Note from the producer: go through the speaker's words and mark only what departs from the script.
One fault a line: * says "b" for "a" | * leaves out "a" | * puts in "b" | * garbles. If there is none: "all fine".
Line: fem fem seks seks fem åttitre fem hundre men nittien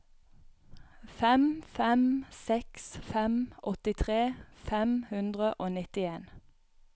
* leaves out "seks"
* says "og" for "men"